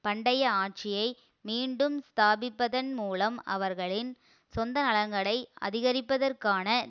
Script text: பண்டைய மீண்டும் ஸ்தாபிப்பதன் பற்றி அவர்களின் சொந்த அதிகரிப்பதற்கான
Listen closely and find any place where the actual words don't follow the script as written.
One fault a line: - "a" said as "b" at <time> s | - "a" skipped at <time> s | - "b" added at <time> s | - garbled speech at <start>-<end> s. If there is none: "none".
- "ஆட்சியை" added at 0.6 s
- "பற்றி" said as "மூலம்" at 2.9 s
- "நலன்களை" added at 4.8 s